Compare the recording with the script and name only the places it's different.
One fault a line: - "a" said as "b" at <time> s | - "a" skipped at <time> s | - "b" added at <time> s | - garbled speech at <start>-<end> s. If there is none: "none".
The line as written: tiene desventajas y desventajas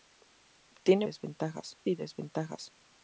none